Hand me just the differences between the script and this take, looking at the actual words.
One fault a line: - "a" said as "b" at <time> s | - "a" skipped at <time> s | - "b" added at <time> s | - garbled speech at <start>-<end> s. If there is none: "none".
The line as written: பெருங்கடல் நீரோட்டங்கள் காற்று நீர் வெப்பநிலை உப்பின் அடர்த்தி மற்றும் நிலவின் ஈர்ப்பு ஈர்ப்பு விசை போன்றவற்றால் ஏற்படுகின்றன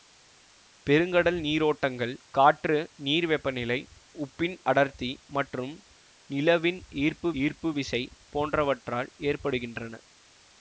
none